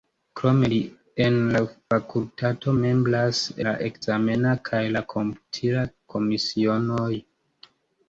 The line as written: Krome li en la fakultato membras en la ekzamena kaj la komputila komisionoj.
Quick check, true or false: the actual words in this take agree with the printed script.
false